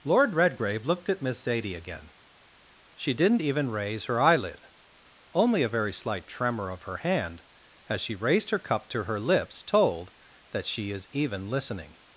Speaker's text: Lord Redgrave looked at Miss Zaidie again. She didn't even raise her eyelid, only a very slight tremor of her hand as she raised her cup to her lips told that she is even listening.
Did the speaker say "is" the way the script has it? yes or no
yes